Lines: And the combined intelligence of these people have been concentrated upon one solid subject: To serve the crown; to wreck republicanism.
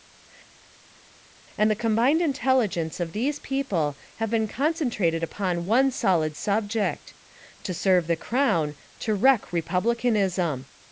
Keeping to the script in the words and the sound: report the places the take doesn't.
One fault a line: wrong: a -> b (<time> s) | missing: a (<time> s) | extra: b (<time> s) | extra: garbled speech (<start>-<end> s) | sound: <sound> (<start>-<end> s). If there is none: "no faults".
no faults